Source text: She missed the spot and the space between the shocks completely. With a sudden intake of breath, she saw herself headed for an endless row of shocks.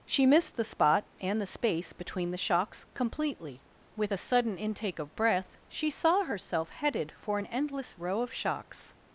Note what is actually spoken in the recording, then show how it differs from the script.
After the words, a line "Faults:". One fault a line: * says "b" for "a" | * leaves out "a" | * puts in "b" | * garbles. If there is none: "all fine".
She missed the spot and the space between the shocks completely. With a sudden intake of breath, she saw herself headed for an endless row of shocks.
Faults:
all fine